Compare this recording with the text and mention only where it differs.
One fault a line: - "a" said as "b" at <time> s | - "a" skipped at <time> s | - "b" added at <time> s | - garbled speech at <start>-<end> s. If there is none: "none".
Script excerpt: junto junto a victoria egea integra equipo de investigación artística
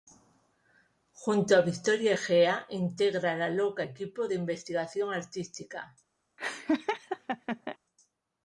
- "junto" skipped at 1.6 s
- "la loca" added at 3.4 s